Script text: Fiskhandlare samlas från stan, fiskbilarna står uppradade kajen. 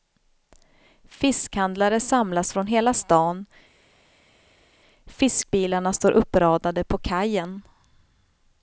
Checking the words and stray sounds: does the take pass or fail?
fail